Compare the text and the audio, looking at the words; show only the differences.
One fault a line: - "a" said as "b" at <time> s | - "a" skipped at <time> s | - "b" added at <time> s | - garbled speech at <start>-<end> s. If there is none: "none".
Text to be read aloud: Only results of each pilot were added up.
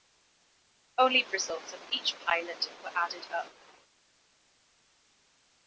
none